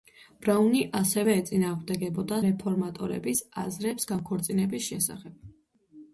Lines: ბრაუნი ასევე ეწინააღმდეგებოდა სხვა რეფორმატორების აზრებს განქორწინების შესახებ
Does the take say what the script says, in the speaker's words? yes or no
no